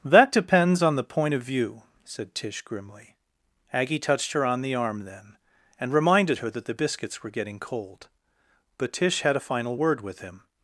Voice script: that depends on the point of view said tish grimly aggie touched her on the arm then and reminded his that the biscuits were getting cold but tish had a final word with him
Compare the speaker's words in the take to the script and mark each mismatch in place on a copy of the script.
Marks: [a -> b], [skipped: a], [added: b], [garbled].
that depends on the point of view said tish grimly aggie touched her on the arm then and reminded [his -> her] that the biscuits were getting cold but tish had a final word with him